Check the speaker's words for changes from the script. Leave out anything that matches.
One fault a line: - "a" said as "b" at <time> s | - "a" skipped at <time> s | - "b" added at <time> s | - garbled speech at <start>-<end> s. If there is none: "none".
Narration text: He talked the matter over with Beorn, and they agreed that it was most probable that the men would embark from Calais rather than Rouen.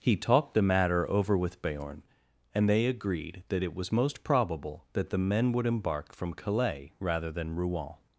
none